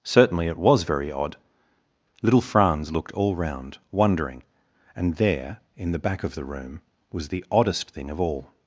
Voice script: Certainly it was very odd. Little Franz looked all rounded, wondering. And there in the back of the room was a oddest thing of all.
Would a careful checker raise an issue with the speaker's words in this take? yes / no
yes